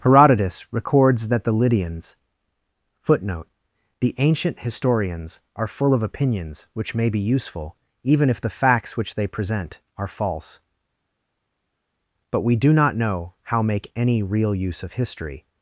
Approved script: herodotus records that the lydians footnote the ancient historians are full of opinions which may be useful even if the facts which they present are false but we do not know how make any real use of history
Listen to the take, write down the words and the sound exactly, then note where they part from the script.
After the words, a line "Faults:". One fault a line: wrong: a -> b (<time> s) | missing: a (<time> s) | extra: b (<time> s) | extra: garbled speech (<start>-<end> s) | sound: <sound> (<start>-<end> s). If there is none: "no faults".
herodotus records that the lydians footnote the ancient historians are full of opinions which may be useful even if the facts which they present are false but we do not know how make any real use of history
Faults:
no faults